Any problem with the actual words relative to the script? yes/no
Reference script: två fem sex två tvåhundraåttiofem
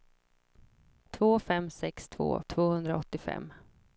no